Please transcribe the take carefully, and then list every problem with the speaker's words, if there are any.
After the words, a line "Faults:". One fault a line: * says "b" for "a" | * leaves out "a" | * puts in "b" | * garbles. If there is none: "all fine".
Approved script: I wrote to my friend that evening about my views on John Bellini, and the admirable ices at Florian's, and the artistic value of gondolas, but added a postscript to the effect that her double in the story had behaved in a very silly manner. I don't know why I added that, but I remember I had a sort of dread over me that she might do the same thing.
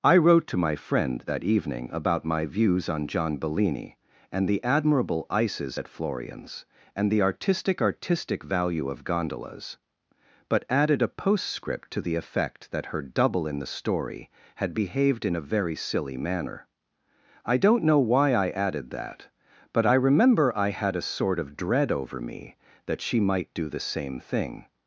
I wrote to my friend that evening about my views on John Bellini, and the admirable ices at Florian's, and the artistic artistic value of gondolas, but added a postscript to the effect that her double in the story had behaved in a very silly manner. I don't know why I added that, but I remember I had a sort of dread over me that she might do the same thing.
Faults:
* puts in "artistic"